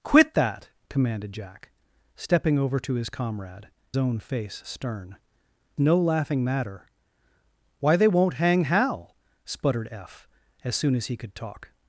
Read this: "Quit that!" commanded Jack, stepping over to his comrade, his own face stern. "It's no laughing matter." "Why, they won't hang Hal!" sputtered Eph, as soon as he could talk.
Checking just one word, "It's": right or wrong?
wrong